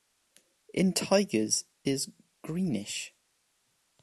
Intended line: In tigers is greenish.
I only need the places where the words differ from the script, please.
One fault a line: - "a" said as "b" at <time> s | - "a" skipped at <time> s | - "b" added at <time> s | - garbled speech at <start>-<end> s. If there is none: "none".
none